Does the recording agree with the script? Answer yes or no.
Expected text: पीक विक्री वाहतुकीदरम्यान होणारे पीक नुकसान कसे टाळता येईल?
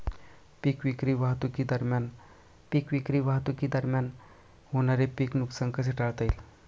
no